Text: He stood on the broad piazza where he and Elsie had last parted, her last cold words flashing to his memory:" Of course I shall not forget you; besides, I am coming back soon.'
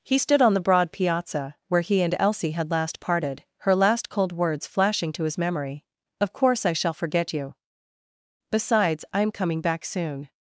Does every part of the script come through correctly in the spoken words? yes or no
no